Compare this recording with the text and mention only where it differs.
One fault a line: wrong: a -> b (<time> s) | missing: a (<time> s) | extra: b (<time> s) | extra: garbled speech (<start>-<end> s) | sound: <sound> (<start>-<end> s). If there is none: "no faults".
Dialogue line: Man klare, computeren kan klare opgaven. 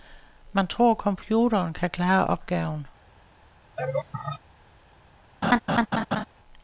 wrong: klare -> tror (0.7 s)
sound: laugh (3.8-4.4 s)
sound: laugh (5.4-6.2 s)